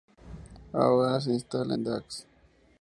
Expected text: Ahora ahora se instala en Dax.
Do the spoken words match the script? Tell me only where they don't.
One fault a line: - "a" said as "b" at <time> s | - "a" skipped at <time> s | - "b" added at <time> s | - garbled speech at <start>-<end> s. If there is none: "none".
- "ahora" skipped at 1.2 s